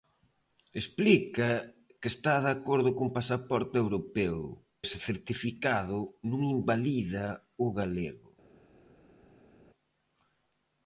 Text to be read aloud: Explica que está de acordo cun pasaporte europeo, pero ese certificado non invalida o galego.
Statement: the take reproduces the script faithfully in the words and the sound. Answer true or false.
false